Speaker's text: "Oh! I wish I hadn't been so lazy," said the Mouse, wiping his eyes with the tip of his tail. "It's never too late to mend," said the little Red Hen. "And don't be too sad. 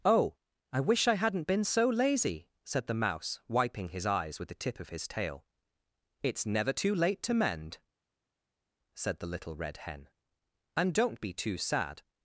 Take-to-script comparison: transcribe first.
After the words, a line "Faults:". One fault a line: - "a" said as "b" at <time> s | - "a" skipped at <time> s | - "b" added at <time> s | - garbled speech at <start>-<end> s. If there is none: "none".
"Oh! I wish I hadn't been so lazy," said the Mouse, wiping his eyes with the tip of his tail. "It's never too late to mend," said the little Red Hen. "And don't be too sad.
Faults:
none